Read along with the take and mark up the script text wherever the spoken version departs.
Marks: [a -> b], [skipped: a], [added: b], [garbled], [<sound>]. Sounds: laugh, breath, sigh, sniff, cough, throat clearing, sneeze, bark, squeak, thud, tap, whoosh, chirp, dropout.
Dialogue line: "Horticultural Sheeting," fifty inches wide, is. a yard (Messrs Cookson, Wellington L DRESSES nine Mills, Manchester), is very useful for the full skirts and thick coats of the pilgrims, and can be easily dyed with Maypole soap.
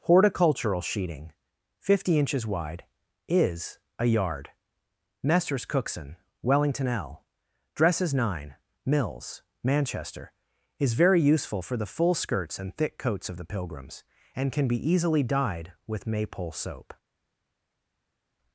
"Horticultural Sheeting," fifty inches wide, is. a yard (Messrs Cookson, Wellington L DRESSES nine Mills, Manchester), is very useful for the full skirts and thick coats of the pilgrims, and can be easily dyed with Maypole soap.